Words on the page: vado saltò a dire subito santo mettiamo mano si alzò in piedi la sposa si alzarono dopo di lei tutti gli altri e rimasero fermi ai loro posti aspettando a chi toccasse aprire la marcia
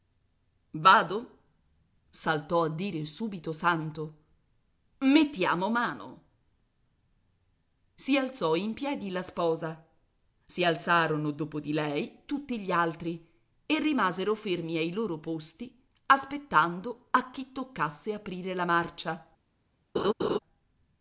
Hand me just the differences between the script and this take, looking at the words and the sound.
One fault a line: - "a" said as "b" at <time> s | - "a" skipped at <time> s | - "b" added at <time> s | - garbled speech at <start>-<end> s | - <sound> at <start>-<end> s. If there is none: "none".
- laugh at 19.9-20.4 s